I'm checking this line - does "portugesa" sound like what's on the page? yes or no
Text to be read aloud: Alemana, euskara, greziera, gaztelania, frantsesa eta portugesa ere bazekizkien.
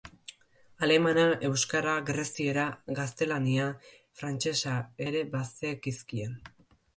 no